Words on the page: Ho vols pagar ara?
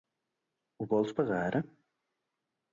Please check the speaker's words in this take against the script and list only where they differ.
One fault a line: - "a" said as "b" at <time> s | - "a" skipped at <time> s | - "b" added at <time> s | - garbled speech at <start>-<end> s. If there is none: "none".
none